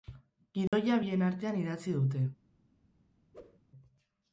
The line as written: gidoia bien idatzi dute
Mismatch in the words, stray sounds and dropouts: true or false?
true